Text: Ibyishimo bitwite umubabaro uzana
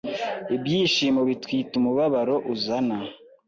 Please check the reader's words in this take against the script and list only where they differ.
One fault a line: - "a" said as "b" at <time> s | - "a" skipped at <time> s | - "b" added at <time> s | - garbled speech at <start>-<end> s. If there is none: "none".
none